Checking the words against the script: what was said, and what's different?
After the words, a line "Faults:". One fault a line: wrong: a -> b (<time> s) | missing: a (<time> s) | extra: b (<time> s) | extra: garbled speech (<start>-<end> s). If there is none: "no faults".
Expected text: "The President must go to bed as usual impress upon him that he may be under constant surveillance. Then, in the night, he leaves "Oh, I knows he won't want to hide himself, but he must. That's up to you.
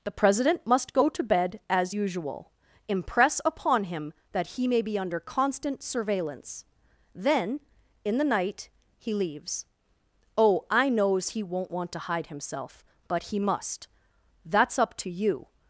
"The President must go to bed as usual impress upon him that he may be under constant surveillance. Then, in the night, he leaves "Oh, I knows he won't want to hide himself, but he must. That's up to you.
Faults:
no faults